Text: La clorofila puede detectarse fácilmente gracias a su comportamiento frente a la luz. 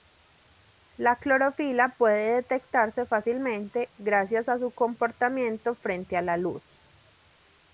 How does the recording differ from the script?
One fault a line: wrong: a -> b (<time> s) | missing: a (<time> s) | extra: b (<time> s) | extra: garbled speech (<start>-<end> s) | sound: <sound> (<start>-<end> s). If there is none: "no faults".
no faults